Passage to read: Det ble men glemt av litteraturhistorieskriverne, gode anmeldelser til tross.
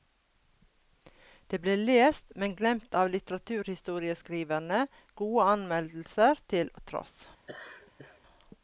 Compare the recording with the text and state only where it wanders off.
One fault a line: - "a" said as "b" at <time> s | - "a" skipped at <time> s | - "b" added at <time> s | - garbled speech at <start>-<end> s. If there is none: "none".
- "lest" added at 1.8 s